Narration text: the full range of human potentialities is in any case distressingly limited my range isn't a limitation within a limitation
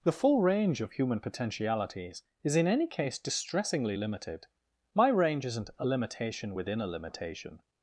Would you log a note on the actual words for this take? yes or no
no